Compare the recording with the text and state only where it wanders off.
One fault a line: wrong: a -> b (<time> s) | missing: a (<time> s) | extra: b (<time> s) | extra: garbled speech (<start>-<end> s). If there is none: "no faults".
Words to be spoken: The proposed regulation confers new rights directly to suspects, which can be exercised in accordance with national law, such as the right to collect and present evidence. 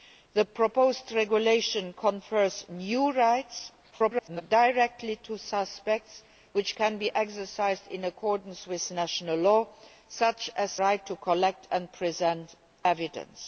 extra: garbled speech (3.9-4.4 s)
missing: the (10.8 s)